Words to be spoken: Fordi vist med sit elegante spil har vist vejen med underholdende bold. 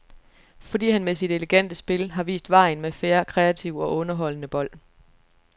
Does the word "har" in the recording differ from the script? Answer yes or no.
no